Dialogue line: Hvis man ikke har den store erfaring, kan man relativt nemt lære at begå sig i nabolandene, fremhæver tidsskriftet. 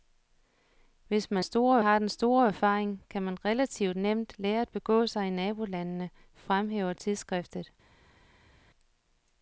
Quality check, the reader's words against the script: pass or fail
fail